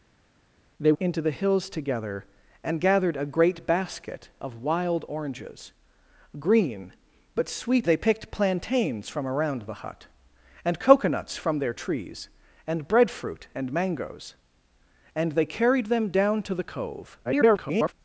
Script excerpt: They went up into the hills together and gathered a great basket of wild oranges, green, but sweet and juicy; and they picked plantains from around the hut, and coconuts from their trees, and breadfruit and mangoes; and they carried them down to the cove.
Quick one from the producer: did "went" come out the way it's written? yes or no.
no